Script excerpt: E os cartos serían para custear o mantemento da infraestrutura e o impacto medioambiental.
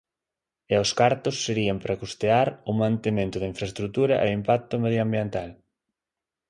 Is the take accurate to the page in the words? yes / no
yes